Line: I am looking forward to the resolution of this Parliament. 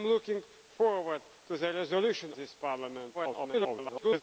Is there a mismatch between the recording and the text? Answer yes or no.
yes